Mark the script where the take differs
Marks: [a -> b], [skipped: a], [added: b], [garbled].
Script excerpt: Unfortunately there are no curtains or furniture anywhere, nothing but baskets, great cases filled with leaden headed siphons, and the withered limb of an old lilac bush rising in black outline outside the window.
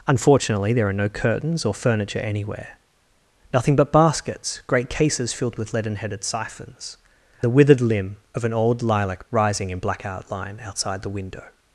Unfortunately there are no curtains or furniture anywhere, nothing but baskets, great cases filled with leaden headed siphons, [skipped: and] the withered limb of an old lilac [skipped: bush] rising in black outline outside the window.